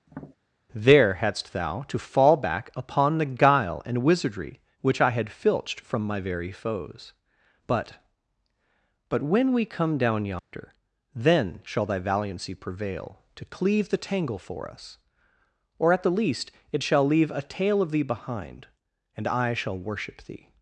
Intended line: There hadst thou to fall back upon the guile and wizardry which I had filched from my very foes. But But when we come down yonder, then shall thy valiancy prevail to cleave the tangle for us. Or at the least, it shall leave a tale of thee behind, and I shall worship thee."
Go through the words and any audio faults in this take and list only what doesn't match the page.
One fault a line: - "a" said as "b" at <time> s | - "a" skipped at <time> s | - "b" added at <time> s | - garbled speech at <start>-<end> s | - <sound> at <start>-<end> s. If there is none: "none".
- tap at 0.1-0.4 s
- dropout at 10.4-10.5 s